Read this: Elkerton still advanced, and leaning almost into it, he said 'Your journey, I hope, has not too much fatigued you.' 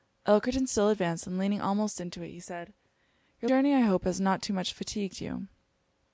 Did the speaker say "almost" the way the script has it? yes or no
yes